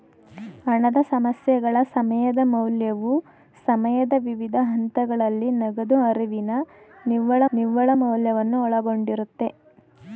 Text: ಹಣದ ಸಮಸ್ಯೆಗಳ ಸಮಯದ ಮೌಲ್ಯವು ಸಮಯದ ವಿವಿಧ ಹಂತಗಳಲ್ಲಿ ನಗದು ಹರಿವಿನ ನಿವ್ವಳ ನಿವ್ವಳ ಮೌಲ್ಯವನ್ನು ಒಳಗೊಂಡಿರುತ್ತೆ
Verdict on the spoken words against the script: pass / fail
pass